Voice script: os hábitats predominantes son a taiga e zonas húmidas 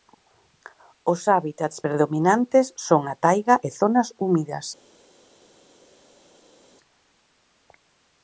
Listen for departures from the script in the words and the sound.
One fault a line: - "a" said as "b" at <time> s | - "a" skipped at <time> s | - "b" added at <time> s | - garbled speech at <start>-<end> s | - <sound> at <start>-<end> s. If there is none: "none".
none